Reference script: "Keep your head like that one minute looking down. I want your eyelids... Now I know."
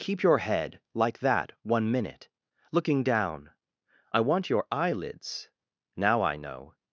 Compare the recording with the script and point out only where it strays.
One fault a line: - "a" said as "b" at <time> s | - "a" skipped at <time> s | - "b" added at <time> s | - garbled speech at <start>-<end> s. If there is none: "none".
none